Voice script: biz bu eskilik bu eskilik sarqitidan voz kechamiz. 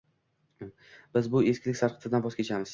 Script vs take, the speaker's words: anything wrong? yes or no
yes